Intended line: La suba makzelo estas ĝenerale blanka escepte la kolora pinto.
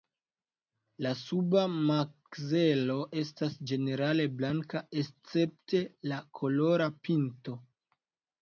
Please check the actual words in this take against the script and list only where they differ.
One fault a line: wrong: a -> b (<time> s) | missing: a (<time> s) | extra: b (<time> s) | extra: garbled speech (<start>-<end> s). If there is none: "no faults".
no faults